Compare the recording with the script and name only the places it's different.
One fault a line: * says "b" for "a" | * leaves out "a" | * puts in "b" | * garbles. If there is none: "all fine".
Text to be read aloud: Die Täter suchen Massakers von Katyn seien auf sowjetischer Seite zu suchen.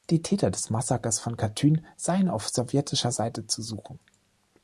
* says "des" for "suchen"